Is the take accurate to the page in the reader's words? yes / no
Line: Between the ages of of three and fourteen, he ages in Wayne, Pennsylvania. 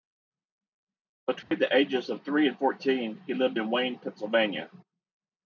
no